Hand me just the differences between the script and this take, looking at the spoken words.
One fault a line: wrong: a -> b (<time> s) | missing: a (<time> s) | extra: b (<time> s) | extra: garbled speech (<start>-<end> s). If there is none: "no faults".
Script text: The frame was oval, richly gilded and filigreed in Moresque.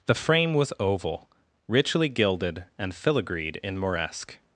no faults